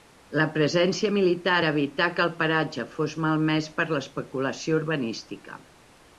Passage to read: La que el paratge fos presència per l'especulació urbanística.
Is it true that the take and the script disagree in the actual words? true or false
true